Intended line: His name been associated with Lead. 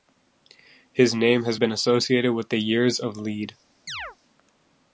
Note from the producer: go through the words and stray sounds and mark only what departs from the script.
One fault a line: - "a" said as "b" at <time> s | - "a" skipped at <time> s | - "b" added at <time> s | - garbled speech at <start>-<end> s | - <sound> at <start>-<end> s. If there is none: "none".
- "has" added at 1.4 s
- "the Years of" added at 2.5 s
- chirp at 3.9-4.2 s